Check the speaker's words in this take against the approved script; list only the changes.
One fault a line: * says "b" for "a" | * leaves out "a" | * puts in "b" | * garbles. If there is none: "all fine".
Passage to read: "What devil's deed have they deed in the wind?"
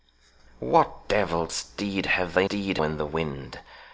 all fine